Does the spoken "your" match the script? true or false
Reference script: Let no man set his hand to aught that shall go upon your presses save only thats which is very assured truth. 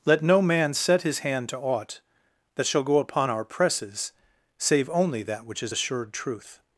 false